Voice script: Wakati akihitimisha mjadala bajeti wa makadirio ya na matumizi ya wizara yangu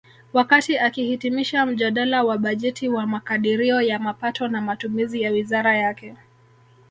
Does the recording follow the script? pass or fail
fail